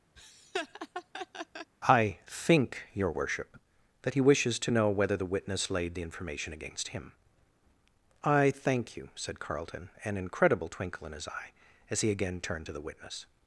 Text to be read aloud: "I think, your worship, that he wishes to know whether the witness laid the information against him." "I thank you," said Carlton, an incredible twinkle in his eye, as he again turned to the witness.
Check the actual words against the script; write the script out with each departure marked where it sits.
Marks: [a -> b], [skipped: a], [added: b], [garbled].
"I think, your worship, that he wishes to know whether the witness laid the information against him." "I thank you," said Carlton, an incredible twinkle in his eye, as he again turned to the witness.